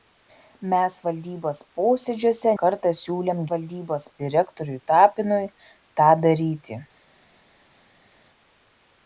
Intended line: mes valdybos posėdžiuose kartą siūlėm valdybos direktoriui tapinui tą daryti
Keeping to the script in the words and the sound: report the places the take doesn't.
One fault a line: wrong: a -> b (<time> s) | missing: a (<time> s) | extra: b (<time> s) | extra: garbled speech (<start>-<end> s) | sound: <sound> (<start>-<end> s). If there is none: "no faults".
no faults